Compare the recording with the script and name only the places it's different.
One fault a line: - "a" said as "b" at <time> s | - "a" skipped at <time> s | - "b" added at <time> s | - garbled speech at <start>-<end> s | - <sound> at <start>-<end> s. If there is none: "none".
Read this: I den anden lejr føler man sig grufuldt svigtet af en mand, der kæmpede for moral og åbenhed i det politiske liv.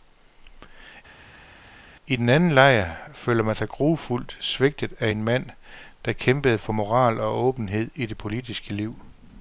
none